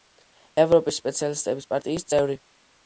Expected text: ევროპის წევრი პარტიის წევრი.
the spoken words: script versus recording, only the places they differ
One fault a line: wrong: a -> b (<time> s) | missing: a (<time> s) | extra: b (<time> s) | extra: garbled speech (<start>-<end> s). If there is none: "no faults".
wrong: წევრი -> სოციალისტების (1.0 s)